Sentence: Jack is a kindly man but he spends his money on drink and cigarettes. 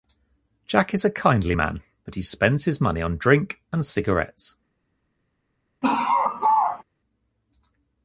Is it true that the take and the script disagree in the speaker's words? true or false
false